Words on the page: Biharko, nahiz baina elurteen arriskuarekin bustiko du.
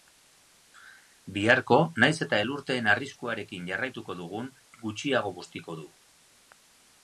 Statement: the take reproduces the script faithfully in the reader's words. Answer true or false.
false